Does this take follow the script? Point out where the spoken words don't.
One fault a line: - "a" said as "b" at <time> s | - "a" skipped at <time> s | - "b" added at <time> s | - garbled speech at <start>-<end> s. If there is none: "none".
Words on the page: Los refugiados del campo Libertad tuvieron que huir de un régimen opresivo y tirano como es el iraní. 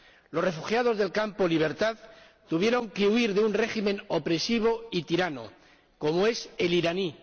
none